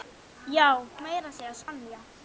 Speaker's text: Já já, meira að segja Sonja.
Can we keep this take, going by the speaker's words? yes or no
no